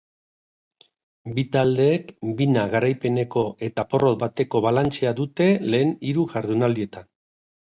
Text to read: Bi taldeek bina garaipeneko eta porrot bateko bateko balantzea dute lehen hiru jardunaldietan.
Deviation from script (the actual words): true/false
true